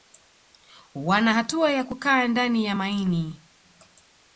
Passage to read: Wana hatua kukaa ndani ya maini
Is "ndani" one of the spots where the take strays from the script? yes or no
no